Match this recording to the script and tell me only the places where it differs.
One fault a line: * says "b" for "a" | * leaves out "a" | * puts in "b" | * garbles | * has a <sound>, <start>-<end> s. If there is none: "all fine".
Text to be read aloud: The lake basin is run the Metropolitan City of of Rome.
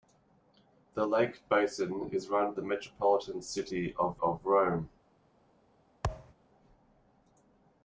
* has a thud, 6.0-6.3 s